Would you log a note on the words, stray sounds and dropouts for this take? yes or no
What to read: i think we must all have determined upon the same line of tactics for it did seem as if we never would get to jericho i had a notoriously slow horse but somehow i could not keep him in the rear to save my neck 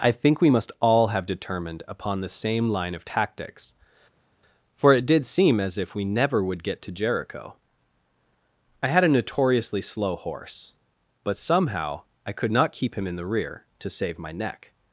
no